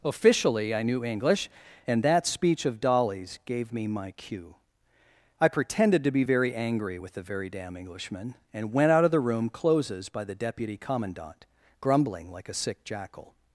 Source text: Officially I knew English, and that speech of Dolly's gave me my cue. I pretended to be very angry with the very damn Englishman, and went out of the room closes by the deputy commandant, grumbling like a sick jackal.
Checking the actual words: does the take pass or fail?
pass